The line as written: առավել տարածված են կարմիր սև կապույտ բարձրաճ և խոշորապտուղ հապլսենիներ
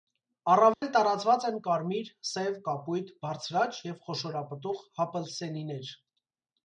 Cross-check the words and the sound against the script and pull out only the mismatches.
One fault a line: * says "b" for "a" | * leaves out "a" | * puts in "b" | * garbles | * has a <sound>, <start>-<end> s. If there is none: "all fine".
* has a dropout, 0.7-0.8 s